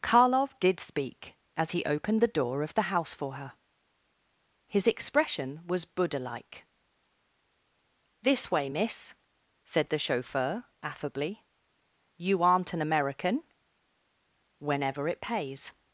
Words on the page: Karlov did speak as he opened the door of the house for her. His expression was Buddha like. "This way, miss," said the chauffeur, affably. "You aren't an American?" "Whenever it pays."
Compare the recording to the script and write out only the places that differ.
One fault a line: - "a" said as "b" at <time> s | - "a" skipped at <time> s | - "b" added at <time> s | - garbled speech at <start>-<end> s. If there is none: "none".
none